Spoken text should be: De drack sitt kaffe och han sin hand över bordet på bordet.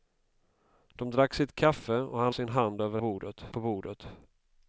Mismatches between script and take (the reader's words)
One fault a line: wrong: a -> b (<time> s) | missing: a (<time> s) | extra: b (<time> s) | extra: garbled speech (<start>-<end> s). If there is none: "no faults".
no faults